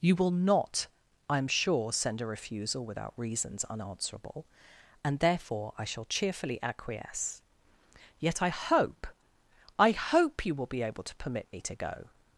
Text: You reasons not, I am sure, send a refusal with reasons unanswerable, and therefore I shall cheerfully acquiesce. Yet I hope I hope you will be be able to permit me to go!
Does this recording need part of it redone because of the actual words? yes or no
yes